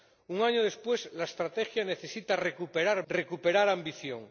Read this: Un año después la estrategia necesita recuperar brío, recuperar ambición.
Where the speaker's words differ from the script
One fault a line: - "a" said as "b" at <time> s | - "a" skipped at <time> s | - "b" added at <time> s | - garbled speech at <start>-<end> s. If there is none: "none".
- "brío" skipped at 3.1 s